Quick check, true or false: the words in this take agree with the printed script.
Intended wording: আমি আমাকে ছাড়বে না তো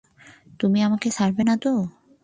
false